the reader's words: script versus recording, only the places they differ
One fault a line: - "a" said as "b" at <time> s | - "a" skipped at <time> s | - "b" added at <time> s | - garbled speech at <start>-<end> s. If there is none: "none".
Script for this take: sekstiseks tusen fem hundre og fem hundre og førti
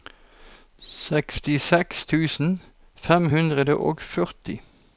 - "fem hundre og" skipped at 4.0 s